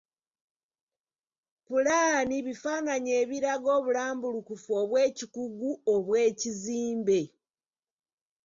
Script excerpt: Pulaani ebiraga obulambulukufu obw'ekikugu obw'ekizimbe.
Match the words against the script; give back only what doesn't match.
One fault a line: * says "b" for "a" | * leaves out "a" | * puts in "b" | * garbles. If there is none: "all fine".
* puts in "bifaananyi"